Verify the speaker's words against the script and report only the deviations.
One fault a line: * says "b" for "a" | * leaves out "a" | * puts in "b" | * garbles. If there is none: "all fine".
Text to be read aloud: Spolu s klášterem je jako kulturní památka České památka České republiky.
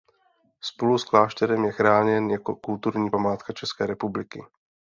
* puts in "chráněn"
* leaves out "památka České"